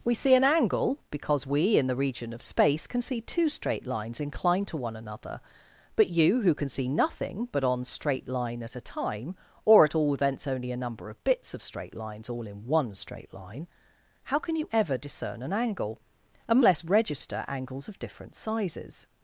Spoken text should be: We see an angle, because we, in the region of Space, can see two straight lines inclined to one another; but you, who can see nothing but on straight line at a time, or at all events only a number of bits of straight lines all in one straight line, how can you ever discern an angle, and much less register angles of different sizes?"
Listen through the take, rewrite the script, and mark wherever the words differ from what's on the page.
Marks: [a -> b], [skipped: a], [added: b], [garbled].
We see an angle, because we, in the region of Space, can see two straight lines inclined to one another; but you, who can see nothing but on straight line at a time, or at all events only a number of bits of straight lines all in one straight line, how can you ever discern an angle, and [skipped: much] less register angles of different sizes?"